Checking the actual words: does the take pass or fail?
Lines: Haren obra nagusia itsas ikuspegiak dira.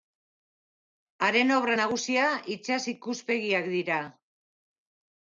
pass